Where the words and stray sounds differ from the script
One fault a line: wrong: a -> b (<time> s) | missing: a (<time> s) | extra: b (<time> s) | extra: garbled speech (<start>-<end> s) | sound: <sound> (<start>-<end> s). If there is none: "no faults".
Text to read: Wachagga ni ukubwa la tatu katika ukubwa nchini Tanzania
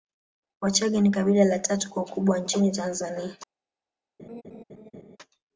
wrong: ukubwa -> kabila (1.1 s)
wrong: katika -> kwa (1.9 s)
sound: laugh (4.2-5.2 s)